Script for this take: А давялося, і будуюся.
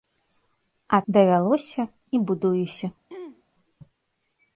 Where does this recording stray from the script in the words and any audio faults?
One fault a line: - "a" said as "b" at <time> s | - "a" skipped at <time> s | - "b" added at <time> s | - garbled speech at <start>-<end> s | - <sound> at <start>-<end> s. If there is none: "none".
- throat clearing at 3.1-3.4 s